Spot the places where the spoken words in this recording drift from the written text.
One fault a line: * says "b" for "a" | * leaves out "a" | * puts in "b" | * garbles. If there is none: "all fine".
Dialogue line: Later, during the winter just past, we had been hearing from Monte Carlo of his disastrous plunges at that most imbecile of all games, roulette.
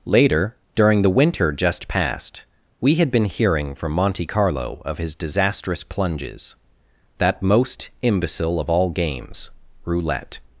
* leaves out "at"